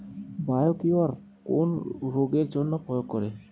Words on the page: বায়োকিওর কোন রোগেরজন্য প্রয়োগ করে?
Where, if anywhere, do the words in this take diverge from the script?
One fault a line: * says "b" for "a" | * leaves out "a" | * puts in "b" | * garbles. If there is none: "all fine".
all fine